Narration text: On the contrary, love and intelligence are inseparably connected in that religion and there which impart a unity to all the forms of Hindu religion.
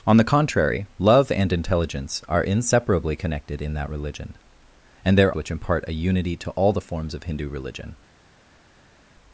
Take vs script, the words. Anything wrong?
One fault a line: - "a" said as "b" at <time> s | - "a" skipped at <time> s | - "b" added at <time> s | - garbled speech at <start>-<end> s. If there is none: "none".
none